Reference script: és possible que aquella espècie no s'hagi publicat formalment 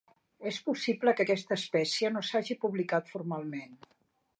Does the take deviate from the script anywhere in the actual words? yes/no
yes